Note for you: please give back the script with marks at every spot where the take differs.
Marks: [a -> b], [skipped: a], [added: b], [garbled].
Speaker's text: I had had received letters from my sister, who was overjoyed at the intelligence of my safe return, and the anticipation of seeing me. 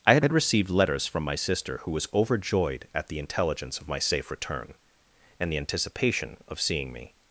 I had had received letters from my sister, who was overjoyed at the intelligence of my safe return, and the anticipation of seeing me.